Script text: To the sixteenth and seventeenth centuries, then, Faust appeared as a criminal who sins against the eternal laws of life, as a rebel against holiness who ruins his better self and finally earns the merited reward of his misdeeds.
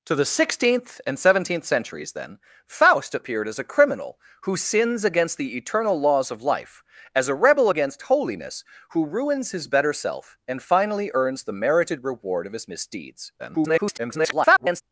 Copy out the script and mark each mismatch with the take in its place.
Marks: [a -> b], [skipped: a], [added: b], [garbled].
To the sixteenth and seventeenth centuries, then, Faust appeared as a criminal who sins against the eternal laws of life, as a rebel against holiness who ruins his better self and finally earns the merited reward of his misdeeds. [garbled]